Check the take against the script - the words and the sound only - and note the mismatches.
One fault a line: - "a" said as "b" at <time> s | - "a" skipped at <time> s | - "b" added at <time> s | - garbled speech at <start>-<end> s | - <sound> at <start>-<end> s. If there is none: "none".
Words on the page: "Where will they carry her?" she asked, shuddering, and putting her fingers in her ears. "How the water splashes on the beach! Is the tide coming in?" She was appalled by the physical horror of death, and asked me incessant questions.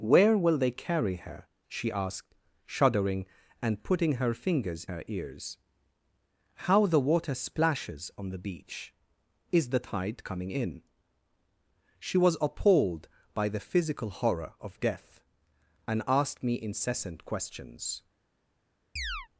- "in" skipped at 4.8 s
- chirp at 19.0-19.3 s